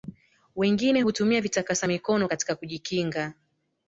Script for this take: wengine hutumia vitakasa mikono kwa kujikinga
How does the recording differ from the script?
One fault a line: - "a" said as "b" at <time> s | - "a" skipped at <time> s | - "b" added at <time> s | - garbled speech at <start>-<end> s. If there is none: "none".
- "kwa" said as "katika" at 2.3 s